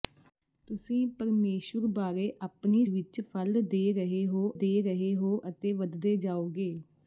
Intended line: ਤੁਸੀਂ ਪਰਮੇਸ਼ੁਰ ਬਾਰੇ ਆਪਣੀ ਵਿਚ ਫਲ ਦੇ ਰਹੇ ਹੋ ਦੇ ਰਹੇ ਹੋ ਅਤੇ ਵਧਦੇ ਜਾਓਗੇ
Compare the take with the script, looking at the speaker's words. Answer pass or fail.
pass